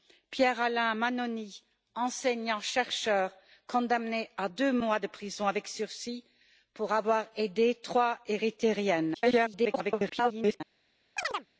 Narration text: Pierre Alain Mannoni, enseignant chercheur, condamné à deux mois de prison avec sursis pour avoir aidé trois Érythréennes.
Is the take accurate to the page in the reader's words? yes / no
no